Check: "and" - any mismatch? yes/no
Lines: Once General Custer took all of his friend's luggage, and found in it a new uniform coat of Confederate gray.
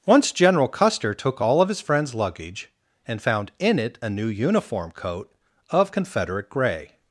no